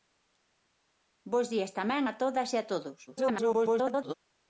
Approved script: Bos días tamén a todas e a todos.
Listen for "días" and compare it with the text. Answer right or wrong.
right